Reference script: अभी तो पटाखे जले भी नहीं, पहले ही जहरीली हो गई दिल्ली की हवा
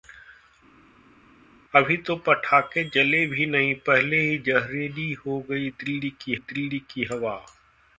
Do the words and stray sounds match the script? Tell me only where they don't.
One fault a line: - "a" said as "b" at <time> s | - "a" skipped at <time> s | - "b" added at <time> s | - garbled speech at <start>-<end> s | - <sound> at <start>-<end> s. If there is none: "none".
- "दिल्ली की" added at 6.4 s